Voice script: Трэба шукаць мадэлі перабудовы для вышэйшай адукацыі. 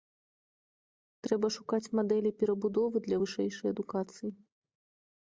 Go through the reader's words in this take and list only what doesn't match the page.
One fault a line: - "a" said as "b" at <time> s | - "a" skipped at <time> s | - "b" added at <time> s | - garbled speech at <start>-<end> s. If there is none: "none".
none